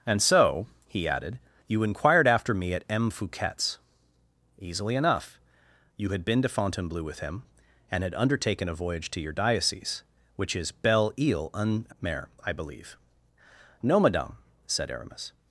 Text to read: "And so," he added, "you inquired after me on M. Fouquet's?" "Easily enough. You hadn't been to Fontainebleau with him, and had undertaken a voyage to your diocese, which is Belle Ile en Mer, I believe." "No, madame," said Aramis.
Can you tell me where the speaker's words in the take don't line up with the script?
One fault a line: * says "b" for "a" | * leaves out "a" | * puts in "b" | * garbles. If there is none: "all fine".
* says "at" for "on"
* says "had" for "hadn't"